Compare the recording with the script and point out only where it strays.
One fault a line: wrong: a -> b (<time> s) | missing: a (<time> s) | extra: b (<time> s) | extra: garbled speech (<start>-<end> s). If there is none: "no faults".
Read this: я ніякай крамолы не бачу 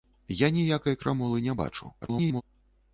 extra: garbled speech (2.0-2.4 s)